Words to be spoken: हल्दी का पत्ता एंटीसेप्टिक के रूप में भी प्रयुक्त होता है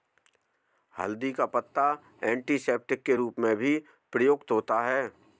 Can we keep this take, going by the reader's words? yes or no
yes